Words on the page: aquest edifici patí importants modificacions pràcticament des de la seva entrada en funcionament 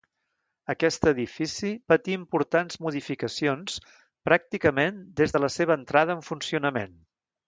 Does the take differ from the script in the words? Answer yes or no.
no